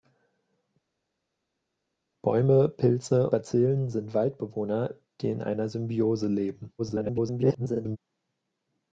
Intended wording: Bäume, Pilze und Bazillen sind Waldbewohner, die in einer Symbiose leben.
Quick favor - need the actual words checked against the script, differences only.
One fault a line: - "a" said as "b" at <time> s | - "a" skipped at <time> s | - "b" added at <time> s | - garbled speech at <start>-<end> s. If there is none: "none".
- "und" skipped at 3.3 s
- garbled speech at 6.8-8.0 s